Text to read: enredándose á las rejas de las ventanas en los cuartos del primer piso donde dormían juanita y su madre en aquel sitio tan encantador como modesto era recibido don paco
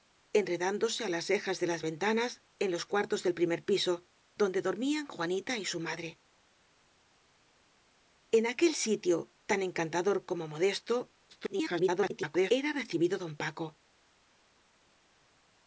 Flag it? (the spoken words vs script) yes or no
yes